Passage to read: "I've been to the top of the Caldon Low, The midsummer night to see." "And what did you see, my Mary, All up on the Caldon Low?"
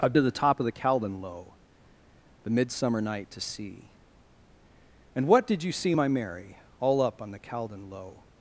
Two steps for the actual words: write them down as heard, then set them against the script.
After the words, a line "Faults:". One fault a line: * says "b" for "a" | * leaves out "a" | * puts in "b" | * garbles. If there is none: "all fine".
"I've to the top of the Caldon Low, The midsummer night to see." "And what did you see, my Mary, All up on the Caldon Low?"
Faults:
* leaves out "been"